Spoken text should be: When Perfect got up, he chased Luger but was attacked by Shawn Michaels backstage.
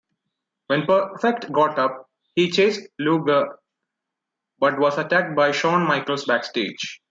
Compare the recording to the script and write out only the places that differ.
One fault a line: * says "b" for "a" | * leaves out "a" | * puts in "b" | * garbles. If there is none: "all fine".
all fine